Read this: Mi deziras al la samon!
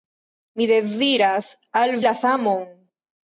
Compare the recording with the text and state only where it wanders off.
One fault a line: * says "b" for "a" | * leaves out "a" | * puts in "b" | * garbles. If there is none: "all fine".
all fine